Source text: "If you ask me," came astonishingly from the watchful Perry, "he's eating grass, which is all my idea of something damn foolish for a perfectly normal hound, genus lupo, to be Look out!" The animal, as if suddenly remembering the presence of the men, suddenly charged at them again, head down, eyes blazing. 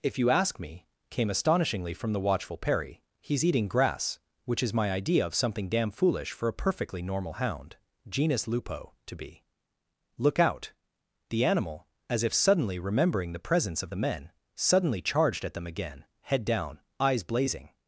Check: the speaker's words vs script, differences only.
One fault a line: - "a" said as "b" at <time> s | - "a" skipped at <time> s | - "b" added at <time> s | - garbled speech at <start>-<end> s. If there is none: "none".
- "all" skipped at 4.7 s